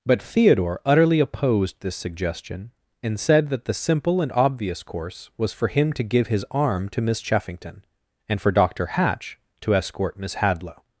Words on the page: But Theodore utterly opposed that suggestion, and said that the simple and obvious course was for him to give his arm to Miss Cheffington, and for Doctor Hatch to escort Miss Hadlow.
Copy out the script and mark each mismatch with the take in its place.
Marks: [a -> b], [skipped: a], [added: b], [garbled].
But Theodore utterly opposed [that -> this] suggestion, and said that the simple and obvious course was for him to give his arm to Miss Cheffington, and for Doctor Hatch to escort Miss Hadlow.